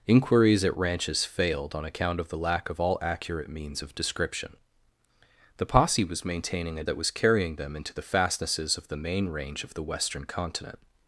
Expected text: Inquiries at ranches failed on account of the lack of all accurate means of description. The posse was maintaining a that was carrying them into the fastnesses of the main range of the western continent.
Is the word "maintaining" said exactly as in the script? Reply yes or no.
yes